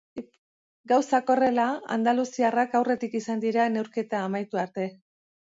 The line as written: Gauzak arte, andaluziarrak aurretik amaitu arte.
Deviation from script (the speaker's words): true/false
true